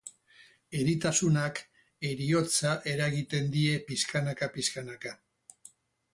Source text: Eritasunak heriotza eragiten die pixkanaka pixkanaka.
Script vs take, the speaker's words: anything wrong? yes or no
no